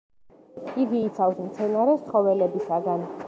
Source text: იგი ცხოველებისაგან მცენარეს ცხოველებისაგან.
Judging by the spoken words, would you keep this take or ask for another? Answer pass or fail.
fail